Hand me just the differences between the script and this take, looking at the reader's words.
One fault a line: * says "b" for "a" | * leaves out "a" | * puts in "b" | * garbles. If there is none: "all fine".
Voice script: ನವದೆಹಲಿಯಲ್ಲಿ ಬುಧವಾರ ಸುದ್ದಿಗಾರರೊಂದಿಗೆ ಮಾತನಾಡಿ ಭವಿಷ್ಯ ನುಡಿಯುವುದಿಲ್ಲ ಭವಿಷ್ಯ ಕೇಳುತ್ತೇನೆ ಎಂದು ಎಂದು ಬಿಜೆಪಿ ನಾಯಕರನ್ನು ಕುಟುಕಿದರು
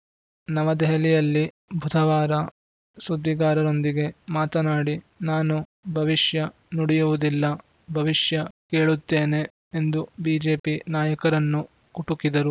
* puts in "ನಾನು"
* leaves out "ಎಂದು"